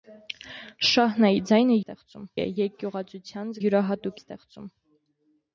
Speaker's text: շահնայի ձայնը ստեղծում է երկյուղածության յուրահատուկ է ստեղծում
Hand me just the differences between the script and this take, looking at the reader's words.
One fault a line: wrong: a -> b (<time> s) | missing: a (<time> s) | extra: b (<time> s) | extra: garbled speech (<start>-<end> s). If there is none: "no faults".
no faults